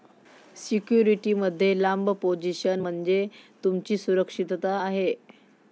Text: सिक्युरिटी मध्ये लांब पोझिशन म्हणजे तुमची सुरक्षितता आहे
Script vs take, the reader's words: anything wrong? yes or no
no